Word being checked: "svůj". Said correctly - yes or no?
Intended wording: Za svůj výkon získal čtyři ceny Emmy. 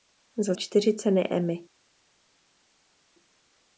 no